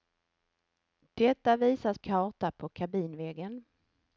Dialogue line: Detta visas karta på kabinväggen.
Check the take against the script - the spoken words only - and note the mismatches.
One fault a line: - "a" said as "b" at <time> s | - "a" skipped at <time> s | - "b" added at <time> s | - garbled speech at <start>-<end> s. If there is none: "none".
none